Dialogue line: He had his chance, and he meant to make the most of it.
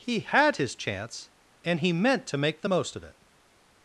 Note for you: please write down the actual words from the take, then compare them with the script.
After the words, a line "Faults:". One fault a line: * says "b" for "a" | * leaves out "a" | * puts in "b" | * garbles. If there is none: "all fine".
He had his chance, and he meant to make the most of it.
Faults:
all fine